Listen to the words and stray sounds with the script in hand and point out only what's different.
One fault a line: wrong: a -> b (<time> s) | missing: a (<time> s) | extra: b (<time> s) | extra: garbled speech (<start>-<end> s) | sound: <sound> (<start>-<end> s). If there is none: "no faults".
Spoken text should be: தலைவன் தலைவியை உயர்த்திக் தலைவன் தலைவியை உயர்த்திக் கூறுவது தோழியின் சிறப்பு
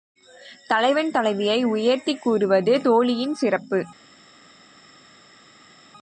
missing: தலைவன் தலைவியை உயர்த்திக் (2.2 s)